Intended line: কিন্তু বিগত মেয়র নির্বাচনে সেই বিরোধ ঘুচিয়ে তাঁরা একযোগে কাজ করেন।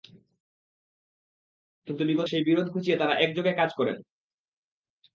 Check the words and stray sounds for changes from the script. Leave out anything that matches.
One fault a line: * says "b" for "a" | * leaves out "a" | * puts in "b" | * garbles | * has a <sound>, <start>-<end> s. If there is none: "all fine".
* leaves out "মেয়র নির্বাচনে"